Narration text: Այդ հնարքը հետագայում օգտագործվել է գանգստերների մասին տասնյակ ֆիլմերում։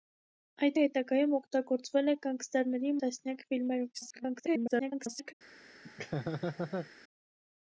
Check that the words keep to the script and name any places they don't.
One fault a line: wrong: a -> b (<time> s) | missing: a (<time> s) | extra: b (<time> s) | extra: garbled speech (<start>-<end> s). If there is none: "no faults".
missing: հնարքը (0.8 s)
missing: մասին (2.9 s)
extra: garbled speech (3.9-5.3 s)